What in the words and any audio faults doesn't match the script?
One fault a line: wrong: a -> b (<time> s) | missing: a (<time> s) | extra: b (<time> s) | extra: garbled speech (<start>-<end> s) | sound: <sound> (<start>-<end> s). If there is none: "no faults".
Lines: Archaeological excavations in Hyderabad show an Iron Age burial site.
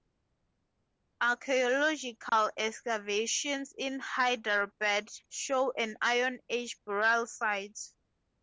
sound: dropout (2.3-2.3 s)